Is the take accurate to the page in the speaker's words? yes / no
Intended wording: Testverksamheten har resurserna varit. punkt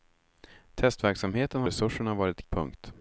yes